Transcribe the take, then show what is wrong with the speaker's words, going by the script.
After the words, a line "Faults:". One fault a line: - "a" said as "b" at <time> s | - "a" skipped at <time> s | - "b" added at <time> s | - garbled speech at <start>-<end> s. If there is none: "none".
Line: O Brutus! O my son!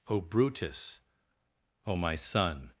O Brutus! O my son!
Faults:
none